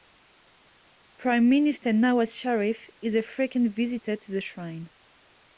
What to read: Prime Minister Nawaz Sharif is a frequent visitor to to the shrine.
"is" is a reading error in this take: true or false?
false